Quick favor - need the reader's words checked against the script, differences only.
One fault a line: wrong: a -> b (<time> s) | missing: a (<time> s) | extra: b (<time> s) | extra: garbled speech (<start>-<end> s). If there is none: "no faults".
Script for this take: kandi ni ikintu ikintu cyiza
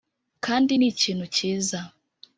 missing: ikintu (1.3 s)